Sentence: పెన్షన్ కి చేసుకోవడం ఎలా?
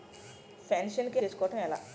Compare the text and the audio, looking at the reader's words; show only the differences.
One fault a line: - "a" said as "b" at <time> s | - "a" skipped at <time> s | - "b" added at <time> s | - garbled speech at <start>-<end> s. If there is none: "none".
none